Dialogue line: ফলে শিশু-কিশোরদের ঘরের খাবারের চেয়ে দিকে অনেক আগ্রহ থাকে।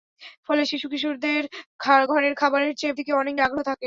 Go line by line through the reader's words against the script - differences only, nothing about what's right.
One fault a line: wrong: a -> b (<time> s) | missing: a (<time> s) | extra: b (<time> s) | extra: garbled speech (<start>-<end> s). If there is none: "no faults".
no faults